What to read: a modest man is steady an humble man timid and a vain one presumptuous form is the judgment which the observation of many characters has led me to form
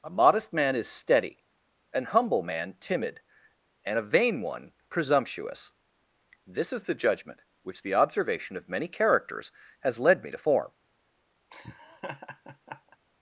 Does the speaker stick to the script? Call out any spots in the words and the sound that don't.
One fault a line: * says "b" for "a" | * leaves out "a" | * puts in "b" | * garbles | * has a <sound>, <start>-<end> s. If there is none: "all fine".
* says "this" for "form"
* has a laugh, 11.5-13.0 s